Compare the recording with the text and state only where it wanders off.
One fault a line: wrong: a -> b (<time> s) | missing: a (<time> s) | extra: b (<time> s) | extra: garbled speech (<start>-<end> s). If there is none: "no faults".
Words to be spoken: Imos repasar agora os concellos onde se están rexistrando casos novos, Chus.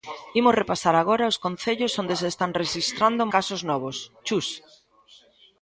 no faults